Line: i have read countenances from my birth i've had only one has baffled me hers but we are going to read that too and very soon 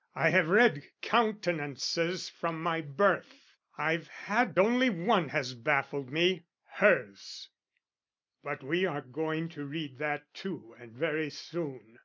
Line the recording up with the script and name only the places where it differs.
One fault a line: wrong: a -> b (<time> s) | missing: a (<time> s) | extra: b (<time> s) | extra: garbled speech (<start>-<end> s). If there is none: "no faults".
no faults